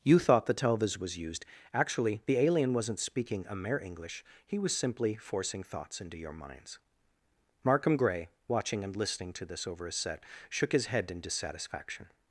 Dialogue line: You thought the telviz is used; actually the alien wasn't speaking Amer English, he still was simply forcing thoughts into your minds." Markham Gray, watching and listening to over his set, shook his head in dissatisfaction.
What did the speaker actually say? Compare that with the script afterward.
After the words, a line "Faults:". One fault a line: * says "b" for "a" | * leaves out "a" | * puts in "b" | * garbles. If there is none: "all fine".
You thought the telviz was used; actually the alien wasn't speaking Amer English, he was simply forcing thoughts into your minds." Markham Gray, watching and listening to this over his set, shook his head in dissatisfaction.
Faults:
* says "was" for "is"
* leaves out "still"
* puts in "this"